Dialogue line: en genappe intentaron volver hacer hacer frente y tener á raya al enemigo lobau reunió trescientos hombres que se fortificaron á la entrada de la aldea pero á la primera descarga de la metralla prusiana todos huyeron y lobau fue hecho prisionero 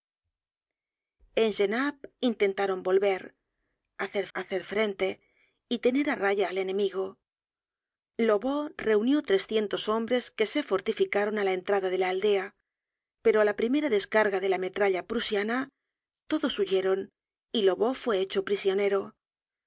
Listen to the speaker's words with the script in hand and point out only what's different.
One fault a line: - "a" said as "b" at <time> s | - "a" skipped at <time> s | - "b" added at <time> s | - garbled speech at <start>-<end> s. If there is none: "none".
none